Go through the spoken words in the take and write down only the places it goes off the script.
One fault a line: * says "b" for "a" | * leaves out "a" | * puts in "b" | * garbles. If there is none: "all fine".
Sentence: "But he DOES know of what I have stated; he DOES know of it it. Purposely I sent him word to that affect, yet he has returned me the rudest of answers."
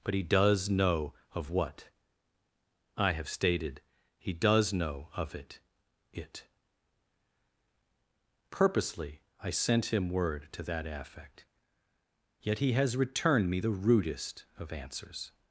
all fine